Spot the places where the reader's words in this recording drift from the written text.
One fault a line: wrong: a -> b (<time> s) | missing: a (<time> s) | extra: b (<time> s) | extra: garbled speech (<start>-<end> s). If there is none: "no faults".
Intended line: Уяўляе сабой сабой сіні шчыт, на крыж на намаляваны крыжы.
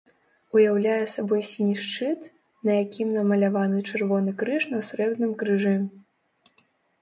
missing: сабой (1.4 s)
extra: якім намаляваны чырвоны (2.8 s)
wrong: намаляваны -> срэбным (4.9 s)